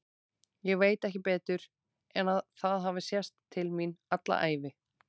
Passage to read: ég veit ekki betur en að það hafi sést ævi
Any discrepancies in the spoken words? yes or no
yes